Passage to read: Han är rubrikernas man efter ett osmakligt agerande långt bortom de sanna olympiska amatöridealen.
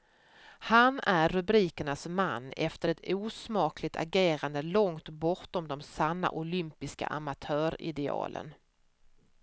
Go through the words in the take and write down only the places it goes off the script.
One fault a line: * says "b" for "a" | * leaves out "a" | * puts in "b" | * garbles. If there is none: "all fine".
all fine